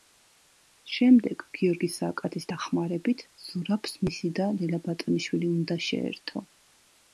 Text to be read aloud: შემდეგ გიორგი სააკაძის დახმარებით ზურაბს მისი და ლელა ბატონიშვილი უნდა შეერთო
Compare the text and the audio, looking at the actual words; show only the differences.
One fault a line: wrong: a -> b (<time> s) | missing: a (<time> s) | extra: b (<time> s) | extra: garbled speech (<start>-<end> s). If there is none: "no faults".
no faults